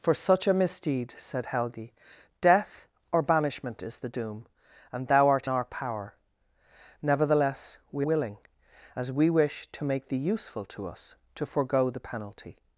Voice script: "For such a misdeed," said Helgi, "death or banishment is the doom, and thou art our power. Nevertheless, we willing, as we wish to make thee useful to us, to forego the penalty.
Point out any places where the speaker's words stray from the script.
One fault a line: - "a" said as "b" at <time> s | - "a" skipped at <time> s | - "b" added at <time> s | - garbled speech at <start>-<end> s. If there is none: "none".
none